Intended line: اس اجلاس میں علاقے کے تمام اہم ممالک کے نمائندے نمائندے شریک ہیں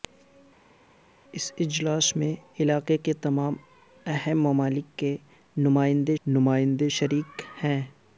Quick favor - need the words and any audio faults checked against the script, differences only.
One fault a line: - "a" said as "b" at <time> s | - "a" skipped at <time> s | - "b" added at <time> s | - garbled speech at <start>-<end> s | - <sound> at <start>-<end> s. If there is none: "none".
none